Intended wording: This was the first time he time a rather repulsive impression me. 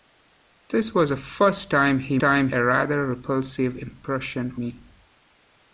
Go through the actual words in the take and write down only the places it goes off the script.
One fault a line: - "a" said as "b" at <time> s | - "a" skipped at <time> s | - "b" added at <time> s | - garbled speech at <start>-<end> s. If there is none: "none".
none